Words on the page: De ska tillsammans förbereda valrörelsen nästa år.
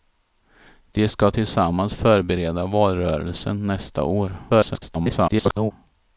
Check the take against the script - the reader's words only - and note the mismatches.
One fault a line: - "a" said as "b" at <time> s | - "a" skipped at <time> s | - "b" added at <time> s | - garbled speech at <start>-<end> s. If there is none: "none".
- garbled speech at 4.5-5.7 s